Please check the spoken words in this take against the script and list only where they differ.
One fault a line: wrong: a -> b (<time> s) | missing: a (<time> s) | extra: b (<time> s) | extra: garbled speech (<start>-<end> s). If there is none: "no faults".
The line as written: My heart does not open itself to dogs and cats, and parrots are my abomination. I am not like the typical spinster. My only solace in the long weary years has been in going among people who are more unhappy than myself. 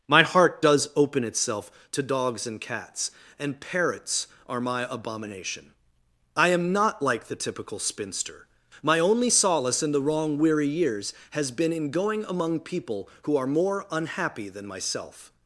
missing: not (0.9 s)
wrong: long -> wrong (10.0 s)